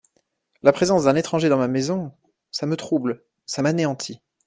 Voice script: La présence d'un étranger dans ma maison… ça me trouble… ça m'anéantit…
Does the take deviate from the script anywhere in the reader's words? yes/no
no